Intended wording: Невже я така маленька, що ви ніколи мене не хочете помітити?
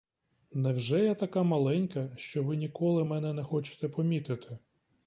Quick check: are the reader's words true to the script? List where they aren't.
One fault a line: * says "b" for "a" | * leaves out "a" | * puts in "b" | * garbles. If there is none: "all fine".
all fine